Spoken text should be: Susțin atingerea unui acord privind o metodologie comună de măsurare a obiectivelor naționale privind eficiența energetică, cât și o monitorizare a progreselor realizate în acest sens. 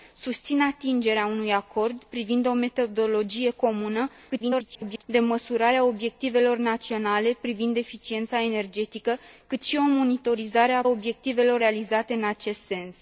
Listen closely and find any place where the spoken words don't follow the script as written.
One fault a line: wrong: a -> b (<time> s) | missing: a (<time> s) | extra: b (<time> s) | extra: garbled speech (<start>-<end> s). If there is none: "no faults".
extra: garbled speech (4.3-5.0 s)
wrong: progreselor -> obiectivelor (10.9 s)